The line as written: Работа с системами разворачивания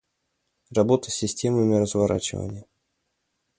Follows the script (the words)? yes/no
yes